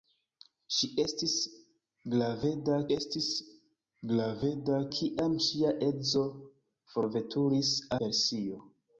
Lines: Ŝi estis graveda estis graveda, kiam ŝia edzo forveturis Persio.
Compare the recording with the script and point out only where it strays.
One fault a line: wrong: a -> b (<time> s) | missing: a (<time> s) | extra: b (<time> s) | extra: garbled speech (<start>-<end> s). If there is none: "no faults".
no faults